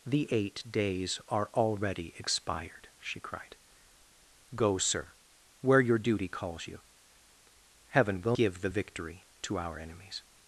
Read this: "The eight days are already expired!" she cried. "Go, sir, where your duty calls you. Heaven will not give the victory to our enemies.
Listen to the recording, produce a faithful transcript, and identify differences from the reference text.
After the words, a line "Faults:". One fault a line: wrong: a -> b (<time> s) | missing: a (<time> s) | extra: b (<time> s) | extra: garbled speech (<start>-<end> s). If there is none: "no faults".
"The eight days are already expired!" she cried. "Go, sir, where your duty calls you. Heaven will give the victory to our enemies.
Faults:
missing: not (8.4 s)